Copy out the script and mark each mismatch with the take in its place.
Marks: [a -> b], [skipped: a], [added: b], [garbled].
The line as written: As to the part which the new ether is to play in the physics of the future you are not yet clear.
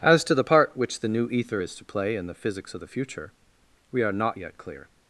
As to the part which the new ether is to play in the physics of the future [you -> we] are not yet clear.